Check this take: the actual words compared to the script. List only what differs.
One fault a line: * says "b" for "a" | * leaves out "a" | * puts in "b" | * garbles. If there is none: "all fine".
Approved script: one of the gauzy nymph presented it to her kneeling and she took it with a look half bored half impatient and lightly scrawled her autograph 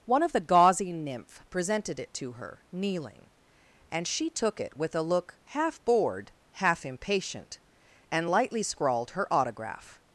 all fine